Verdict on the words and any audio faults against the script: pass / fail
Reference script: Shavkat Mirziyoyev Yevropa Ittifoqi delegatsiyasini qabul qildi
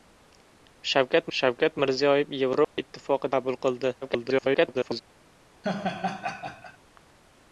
fail